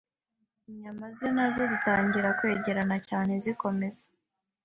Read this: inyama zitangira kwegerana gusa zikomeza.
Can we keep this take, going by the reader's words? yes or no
no